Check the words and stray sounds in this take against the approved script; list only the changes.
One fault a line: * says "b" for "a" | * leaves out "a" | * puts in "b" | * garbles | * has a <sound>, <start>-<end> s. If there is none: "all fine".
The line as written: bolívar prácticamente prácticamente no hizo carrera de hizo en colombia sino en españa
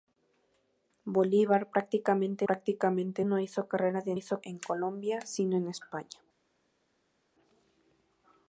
all fine